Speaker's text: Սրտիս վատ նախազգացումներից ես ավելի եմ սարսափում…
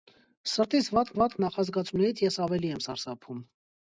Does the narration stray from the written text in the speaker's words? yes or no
yes